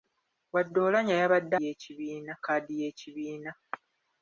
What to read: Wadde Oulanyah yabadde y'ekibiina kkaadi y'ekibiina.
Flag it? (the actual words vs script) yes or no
no